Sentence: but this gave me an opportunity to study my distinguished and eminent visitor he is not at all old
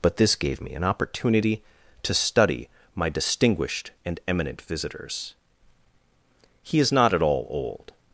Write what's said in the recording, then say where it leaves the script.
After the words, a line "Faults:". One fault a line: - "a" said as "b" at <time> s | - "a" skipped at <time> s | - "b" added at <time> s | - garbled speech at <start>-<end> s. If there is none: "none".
but this gave me an opportunity to study my distinguished and eminent visitors he is not at all old
Faults:
- "visitor" said as "visitors" at 4.6 s